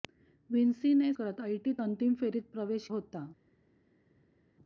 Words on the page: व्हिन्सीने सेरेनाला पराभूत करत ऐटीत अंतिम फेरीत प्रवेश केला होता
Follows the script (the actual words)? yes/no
no